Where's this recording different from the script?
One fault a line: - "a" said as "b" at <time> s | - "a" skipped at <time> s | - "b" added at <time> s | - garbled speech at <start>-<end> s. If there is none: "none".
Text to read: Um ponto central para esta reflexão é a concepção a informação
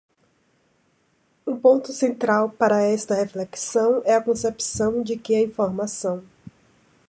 - "de que" added at 5.0 s